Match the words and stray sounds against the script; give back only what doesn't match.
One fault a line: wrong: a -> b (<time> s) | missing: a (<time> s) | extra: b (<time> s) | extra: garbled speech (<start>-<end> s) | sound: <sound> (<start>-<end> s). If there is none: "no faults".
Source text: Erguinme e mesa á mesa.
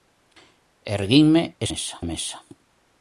no faults